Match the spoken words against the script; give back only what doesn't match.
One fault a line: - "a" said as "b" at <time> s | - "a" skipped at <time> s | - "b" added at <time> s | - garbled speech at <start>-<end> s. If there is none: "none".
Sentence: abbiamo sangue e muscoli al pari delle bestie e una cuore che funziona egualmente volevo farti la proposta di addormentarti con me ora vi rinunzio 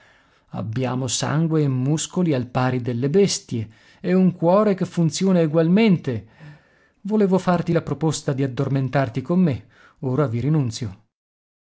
- "una" said as "un" at 4.1 s